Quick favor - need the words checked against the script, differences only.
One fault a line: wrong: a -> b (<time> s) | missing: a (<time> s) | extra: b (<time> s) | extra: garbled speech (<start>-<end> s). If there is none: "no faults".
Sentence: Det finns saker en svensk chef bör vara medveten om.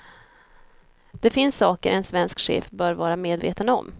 no faults